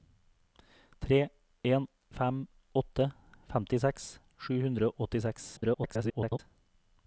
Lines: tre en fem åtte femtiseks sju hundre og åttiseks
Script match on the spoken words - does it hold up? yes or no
no